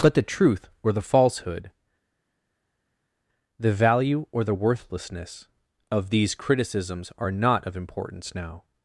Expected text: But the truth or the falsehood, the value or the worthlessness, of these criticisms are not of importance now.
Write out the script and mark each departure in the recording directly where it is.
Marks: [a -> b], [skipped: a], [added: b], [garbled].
But the truth or the falsehood, the value or the worthlessness, of these criticisms are not of importance now.